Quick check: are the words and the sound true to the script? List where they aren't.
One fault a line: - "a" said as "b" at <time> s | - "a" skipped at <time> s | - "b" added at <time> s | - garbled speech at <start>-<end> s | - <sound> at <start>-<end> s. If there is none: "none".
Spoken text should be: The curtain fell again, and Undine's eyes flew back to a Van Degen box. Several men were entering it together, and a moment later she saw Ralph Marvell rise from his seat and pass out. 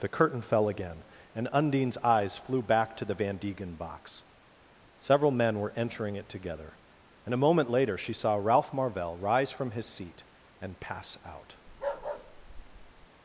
- "a" said as "the" at 3.0 s
- bark at 11.7-13.1 s